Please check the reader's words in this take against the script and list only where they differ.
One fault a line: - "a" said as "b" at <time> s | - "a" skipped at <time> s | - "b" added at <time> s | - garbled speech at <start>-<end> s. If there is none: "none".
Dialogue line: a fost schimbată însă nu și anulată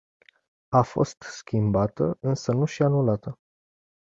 none